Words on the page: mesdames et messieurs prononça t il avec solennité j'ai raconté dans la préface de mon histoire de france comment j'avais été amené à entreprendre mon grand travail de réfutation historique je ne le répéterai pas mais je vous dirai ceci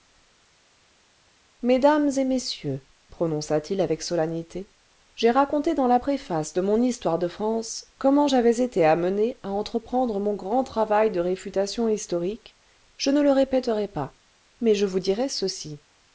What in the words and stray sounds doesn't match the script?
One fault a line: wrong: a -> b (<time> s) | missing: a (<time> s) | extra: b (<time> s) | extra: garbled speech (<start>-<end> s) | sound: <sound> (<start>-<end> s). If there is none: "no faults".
no faults